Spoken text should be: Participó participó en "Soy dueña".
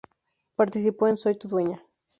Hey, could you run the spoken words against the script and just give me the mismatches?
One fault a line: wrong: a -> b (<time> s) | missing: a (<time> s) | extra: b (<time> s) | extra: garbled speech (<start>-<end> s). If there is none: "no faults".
missing: participó (1.1 s)
extra: tu (1.4 s)